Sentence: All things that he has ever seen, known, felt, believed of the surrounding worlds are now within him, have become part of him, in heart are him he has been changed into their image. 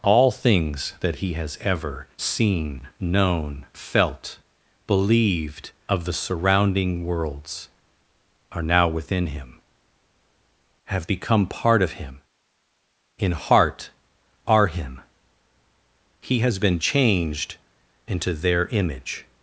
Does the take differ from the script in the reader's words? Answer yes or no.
no